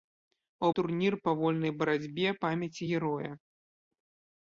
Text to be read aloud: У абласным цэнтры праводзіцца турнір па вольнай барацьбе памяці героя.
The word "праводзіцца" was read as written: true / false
false